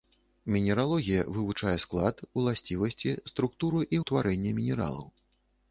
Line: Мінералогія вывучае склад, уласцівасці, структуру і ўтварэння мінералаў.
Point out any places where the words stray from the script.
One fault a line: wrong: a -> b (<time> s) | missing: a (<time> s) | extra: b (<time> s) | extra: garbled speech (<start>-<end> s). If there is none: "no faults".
no faults